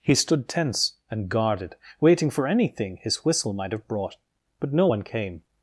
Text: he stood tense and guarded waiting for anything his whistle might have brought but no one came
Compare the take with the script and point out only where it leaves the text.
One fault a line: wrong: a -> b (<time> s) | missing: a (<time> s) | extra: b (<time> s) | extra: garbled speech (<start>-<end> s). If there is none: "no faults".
no faults